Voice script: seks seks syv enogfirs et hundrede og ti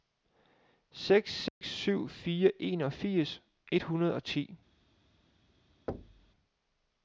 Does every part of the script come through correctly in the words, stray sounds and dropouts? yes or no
no